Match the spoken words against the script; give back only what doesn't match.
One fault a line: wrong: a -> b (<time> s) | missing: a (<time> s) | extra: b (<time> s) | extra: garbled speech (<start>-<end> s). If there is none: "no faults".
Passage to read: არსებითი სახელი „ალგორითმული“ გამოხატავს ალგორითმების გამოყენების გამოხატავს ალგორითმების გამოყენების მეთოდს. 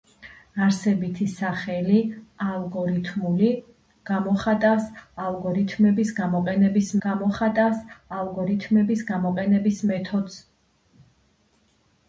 no faults